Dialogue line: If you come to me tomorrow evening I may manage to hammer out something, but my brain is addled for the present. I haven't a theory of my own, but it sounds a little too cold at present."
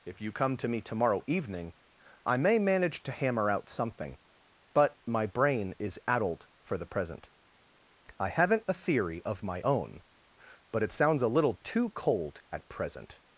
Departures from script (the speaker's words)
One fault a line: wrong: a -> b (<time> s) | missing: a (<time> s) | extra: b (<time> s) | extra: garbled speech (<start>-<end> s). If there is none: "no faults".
no faults